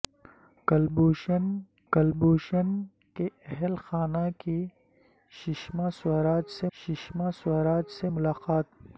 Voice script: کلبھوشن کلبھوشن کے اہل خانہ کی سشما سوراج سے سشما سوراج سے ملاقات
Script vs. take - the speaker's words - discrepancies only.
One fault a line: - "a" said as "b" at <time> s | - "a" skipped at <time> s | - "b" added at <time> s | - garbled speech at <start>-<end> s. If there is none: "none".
none